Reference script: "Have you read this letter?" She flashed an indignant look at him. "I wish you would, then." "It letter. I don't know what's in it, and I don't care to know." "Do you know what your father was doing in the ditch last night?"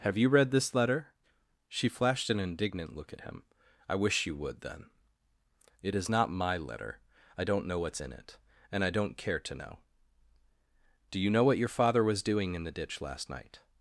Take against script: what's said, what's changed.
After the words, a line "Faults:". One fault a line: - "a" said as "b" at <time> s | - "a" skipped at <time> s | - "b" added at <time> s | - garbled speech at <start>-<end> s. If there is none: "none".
"Have you read this letter?" She flashed an indignant look at him. "I wish you would, then." "It is not my letter. I don't know what's in it, and I don't care to know." "Do you know what your father was doing in the ditch last night?"
Faults:
- "is not my" added at 5.9 s